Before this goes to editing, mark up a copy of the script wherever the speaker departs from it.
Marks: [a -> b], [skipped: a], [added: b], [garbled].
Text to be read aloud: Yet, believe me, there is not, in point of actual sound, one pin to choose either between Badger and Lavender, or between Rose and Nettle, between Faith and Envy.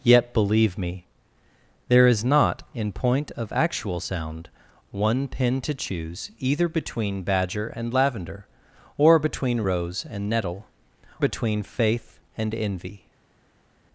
Yet, believe me, there is not, in point of actual sound, one pin to choose either between Badger and Lavender, or between Rose and Nettle, between Faith and Envy.